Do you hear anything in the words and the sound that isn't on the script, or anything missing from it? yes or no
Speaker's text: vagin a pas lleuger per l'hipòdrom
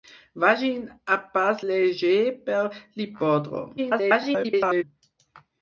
yes